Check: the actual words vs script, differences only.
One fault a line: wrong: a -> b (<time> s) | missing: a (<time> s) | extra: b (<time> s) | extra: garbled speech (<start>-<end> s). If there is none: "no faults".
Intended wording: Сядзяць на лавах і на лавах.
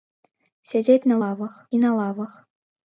no faults